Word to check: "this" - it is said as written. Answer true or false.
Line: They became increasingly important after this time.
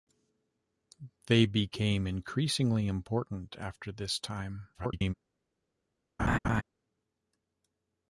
true